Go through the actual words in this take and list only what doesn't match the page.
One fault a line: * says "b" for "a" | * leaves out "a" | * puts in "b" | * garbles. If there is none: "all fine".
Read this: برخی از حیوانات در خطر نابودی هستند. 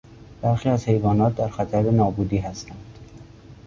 all fine